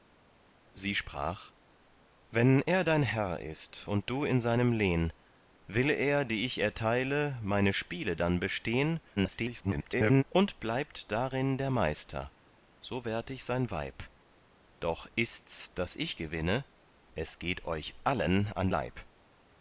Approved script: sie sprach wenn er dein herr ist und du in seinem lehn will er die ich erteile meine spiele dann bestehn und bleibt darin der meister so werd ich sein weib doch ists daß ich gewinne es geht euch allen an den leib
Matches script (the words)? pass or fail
fail